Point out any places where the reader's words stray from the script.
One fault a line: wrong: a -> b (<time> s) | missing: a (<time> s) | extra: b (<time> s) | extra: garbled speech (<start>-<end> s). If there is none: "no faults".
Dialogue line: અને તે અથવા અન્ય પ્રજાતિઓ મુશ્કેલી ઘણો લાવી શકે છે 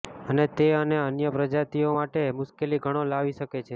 wrong: અથવા -> અને (0.8 s)
extra: માટે (1.9 s)